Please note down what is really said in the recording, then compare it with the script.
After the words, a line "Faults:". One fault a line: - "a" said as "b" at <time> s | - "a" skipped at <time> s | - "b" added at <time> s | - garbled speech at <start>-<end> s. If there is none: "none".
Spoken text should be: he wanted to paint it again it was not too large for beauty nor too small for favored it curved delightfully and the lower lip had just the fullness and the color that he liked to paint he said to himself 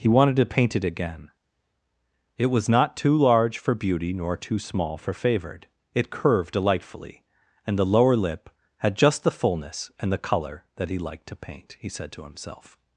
he wanted to paint it again it was not too large for beauty nor too small for favored it curved delightfully and the lower lip had just the fullness and the color that he liked to paint he said to himself
Faults:
none